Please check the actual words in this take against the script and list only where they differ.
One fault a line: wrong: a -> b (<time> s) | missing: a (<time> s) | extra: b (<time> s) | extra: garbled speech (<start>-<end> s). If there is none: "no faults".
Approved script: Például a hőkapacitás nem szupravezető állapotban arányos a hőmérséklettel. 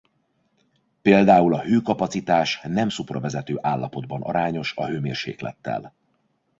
no faults